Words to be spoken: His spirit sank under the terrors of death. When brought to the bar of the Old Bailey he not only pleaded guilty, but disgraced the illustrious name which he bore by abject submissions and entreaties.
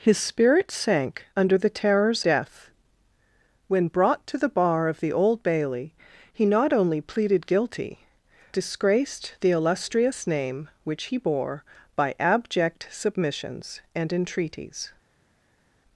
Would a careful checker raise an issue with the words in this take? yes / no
yes